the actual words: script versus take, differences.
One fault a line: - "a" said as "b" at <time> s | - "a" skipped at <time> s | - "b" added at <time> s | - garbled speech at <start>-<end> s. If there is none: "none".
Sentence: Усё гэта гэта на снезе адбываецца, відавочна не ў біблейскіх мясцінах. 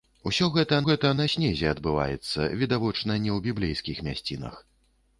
none